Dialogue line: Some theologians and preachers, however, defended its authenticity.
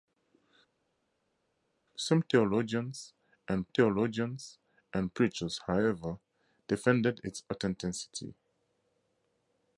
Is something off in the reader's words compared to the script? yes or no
yes